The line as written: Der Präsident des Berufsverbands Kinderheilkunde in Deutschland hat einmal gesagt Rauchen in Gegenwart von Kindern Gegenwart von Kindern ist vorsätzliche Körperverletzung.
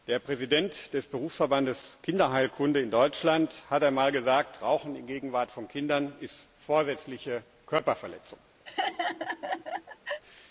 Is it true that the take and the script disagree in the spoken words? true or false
true